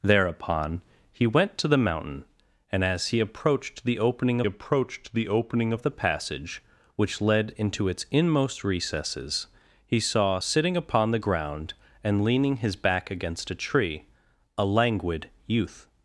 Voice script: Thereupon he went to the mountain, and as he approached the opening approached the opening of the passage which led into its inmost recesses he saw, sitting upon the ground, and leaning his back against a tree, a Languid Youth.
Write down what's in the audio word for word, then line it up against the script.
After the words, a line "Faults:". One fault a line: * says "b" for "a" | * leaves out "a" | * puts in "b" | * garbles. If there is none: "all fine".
Thereupon he went to the mountain, and as he approached the opening approached the opening of the passage which led into its inmost recesses he saw, sitting upon the ground, and leaning his back against a tree, a Languid Youth.
Faults:
all fine